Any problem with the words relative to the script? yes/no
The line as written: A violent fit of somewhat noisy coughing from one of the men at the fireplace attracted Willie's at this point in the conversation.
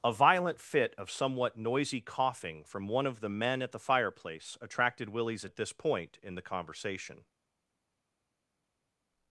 no